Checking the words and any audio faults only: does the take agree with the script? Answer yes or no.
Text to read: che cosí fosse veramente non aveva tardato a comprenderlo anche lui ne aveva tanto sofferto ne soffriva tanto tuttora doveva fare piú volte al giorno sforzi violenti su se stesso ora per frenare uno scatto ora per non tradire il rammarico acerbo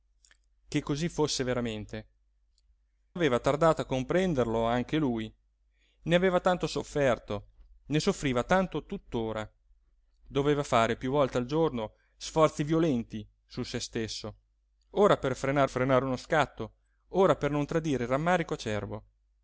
no